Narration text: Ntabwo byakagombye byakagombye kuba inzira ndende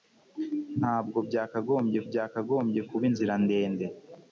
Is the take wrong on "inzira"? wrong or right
right